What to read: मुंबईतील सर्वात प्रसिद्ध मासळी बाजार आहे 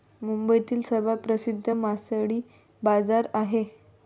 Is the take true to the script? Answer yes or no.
yes